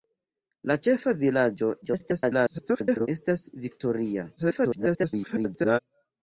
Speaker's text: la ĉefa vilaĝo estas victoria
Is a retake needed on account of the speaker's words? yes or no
yes